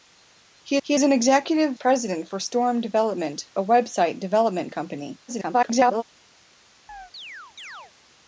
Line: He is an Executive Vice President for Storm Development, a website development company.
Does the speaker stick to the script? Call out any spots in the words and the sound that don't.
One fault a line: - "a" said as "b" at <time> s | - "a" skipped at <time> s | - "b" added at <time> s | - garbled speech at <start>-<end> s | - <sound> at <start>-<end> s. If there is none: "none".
- "he" added at 0.8 s
- "Vice" skipped at 1.8 s
- garbled speech at 5.3-6.0 s
- chirp at 6.9-7.9 s